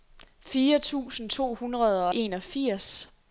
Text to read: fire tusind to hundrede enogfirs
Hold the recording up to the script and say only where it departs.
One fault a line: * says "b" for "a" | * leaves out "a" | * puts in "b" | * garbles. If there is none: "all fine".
all fine